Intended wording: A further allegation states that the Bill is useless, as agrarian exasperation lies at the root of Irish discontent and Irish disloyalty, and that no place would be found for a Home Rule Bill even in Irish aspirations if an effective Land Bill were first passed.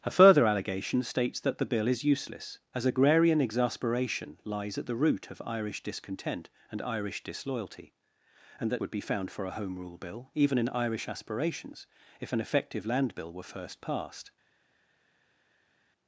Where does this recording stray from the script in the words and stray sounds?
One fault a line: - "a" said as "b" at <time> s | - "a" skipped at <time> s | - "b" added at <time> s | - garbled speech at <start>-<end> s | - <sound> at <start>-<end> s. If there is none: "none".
- "no place" skipped at 8.8 s